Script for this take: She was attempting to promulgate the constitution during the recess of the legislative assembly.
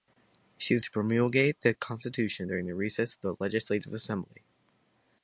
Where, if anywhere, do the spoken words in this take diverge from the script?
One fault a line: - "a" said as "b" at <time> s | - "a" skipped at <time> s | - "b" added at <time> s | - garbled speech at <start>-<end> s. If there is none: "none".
- "attempting" skipped at 0.8 s